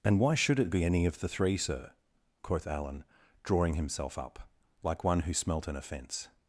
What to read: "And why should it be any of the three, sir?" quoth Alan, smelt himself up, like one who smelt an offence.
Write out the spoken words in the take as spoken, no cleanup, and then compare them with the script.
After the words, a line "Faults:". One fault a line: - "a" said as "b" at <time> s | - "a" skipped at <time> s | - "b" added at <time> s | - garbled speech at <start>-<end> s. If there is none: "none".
"And why should it be any of the three, sir?" quoth Alan, drawing himself up, like one who smelt an offence.
Faults:
- "smelt" said as "drawing" at 3.4 s